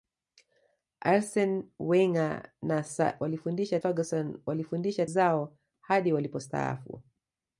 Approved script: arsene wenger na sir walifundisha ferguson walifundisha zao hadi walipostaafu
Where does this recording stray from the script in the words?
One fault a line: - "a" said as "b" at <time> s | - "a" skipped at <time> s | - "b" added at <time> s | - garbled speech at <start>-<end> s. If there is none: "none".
none